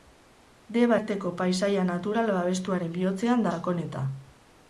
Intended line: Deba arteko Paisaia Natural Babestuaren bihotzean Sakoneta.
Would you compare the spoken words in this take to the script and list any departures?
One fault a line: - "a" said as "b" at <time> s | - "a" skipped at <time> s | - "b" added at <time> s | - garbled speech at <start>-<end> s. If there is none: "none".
none